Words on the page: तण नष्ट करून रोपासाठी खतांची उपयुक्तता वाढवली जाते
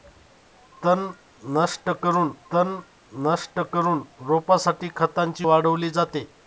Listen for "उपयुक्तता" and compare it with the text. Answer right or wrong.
wrong